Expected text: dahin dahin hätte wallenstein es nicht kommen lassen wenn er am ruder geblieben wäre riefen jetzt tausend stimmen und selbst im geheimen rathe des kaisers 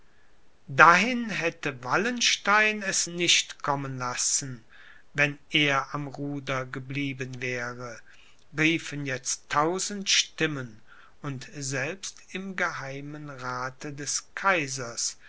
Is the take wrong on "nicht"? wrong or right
right